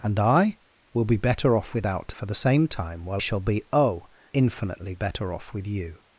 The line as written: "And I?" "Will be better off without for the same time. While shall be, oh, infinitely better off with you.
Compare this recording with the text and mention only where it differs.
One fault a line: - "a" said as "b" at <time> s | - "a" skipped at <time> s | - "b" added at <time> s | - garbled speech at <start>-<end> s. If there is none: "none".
none